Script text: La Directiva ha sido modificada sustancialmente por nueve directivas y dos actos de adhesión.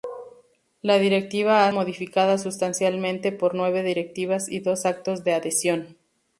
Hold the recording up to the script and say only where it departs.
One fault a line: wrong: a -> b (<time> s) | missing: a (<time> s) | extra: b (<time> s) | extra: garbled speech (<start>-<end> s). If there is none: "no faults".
missing: sido (1.7 s)